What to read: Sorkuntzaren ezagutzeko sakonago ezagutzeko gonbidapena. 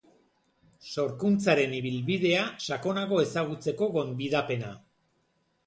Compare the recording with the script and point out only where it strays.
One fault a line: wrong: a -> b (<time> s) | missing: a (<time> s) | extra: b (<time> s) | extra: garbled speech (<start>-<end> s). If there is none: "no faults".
wrong: ezagutzeko -> ibilbidea (1.8 s)